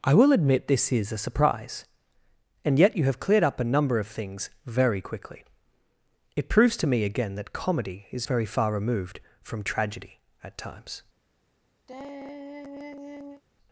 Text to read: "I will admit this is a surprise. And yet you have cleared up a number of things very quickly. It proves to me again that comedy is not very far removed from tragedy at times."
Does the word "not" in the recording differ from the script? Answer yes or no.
yes